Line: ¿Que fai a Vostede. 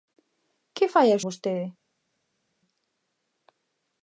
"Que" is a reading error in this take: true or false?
false